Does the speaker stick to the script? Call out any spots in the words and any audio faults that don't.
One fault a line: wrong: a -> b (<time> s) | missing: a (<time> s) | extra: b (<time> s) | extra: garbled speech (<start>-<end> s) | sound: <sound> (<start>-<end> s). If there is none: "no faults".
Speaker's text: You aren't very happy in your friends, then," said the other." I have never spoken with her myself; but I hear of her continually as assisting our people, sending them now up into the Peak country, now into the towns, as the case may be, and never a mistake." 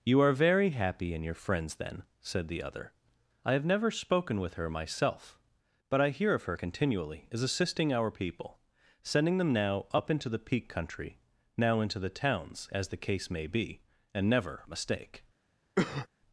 wrong: aren't -> are (0.2 s)
sound: cough (15.8-16.1 s)